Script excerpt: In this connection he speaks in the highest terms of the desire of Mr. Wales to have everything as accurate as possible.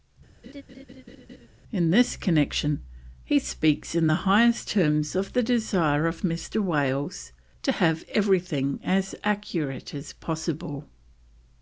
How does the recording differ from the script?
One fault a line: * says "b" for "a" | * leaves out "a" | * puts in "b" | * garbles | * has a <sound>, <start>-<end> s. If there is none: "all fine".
* has a laugh, 0.4-1.5 s